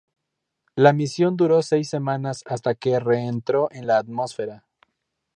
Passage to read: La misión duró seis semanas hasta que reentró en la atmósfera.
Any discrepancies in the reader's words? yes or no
no